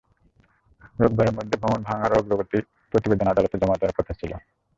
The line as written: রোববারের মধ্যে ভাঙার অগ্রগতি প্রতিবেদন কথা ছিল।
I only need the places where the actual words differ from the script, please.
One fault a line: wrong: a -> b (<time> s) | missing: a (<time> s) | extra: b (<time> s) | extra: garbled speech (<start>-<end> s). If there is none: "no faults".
extra: ভবন (1.6 s)
extra: আদালতে জমা দেওয়ার (3.3 s)